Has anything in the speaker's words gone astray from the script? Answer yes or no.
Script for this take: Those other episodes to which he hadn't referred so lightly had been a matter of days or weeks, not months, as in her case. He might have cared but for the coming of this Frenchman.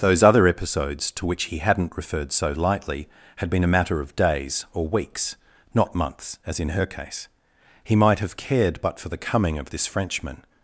no